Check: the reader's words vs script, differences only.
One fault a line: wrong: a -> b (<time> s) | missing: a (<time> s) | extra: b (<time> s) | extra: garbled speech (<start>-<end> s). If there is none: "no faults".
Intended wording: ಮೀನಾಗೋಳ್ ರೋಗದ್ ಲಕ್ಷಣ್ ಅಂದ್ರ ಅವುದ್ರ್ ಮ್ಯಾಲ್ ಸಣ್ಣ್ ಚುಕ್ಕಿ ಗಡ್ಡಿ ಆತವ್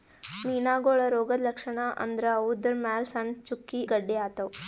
no faults